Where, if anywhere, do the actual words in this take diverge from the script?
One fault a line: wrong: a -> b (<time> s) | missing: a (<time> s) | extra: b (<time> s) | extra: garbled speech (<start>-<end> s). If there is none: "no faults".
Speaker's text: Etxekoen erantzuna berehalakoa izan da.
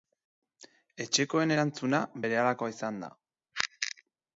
no faults